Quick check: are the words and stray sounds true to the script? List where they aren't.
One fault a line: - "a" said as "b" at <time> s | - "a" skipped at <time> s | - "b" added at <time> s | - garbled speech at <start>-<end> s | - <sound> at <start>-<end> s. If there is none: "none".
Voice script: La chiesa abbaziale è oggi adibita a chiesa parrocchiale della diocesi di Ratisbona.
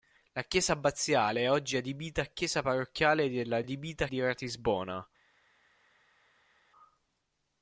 - "diocesi" said as "adibita" at 3.6 s